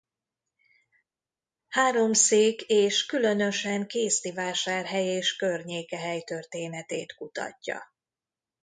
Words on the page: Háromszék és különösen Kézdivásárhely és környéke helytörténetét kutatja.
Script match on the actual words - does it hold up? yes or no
yes